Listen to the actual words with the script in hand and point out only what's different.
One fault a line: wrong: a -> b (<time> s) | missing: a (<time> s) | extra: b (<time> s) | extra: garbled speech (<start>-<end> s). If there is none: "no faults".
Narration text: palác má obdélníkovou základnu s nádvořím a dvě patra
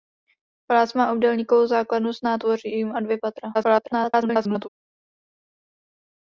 extra: garbled speech (3.5-4.7 s)